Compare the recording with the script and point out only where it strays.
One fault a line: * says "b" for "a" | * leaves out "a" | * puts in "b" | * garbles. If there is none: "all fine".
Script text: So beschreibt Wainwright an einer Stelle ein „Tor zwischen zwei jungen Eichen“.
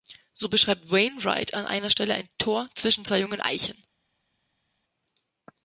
all fine